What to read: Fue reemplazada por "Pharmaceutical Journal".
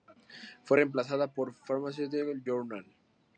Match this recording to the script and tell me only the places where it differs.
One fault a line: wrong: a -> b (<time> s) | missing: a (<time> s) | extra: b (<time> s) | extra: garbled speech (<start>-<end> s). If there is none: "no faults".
no faults